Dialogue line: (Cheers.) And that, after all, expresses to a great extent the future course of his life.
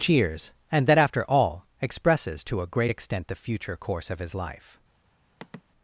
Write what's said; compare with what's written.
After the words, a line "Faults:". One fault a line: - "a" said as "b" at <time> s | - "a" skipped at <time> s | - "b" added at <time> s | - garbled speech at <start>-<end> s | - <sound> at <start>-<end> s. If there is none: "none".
(Cheers.) And that, after all, expresses to a great extent the future course of his life.
Faults:
- sigh at 5.4-5.6 s